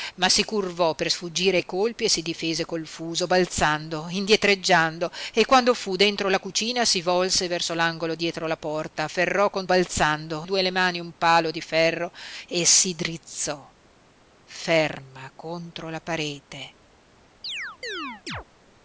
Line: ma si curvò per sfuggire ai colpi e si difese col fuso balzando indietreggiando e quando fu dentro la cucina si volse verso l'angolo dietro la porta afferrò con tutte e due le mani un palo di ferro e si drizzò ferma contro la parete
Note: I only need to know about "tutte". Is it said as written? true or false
false